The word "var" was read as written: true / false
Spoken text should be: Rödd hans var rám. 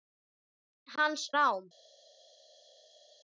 false